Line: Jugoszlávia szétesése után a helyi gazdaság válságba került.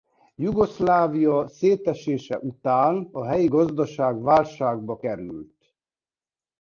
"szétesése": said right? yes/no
yes